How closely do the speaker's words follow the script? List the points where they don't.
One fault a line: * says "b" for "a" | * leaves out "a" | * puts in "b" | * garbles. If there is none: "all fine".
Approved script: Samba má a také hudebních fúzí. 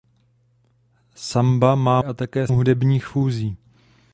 all fine